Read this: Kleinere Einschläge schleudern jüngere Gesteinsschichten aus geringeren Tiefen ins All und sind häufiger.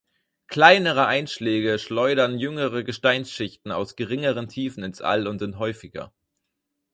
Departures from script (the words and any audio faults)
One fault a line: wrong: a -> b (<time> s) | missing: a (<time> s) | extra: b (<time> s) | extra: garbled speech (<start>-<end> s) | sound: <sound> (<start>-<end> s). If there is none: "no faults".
no faults